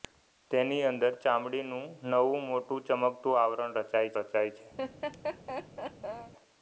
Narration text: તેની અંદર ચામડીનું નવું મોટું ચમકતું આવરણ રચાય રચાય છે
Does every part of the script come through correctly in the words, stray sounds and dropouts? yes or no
no